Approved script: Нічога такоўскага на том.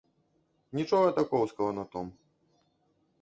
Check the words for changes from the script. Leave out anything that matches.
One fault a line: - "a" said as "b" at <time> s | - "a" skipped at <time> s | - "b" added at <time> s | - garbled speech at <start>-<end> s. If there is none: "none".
none